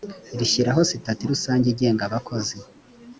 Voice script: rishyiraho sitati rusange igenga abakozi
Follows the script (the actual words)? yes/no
yes